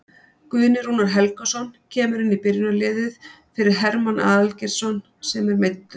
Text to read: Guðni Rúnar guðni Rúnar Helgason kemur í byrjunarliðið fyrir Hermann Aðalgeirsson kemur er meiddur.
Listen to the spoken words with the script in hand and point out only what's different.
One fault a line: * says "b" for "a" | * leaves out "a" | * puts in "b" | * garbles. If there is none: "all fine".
* leaves out "guðni Rúnar"
* puts in "inn"
* says "sem" for "kemur"